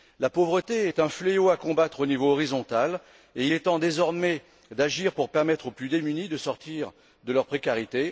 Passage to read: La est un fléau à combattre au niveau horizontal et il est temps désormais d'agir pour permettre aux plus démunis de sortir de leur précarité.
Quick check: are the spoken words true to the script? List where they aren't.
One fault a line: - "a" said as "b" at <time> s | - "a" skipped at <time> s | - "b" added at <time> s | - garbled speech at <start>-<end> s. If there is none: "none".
- "pauvreté" added at 0.3 s